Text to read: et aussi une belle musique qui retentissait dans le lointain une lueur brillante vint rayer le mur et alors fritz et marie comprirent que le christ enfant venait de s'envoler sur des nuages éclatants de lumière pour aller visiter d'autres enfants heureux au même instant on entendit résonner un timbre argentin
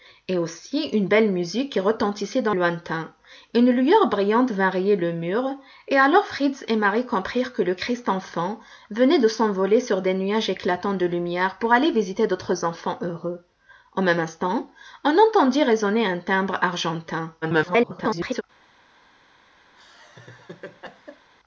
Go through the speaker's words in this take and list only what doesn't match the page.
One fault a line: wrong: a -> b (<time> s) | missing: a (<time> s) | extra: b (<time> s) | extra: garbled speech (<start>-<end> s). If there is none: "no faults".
missing: le (2.6 s)
extra: garbled speech (17.4-18.4 s)